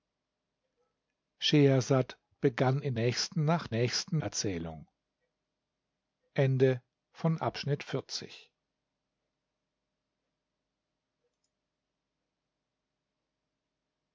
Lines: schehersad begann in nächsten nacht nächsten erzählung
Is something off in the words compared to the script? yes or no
no